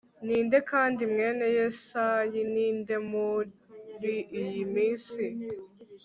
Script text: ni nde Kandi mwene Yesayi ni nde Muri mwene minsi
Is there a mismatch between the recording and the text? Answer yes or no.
yes